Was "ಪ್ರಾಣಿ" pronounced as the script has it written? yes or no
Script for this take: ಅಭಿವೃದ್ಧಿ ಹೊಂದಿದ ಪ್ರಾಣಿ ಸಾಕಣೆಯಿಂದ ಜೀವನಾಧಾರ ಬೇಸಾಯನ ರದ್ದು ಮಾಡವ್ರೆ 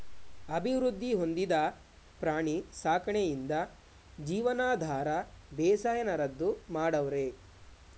yes